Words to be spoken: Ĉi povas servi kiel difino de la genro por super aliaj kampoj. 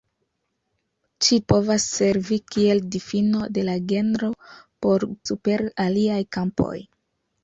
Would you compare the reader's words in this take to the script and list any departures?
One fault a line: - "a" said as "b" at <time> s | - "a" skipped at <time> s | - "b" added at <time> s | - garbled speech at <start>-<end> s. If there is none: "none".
none